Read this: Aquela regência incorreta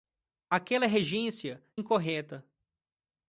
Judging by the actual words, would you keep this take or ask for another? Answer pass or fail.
pass